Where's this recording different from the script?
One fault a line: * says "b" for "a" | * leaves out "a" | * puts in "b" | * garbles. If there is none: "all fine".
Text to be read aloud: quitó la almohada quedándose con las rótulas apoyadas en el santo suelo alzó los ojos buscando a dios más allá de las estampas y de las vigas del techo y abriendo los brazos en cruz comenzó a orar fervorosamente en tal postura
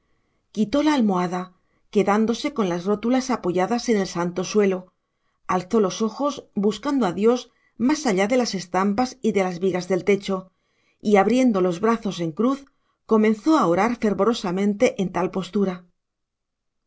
all fine